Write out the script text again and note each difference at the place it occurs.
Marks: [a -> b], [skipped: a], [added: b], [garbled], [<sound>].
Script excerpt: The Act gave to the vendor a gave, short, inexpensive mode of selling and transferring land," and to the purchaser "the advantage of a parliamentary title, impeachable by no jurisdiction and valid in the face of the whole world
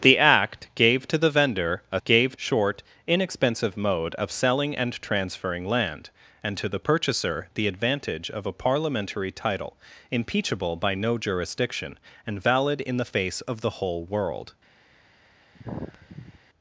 The Act gave to the vendor a gave, short, inexpensive mode of selling and transferring land," and to the purchaser "the advantage of a parliamentary title, impeachable by no jurisdiction and valid in the face of the whole world [sigh]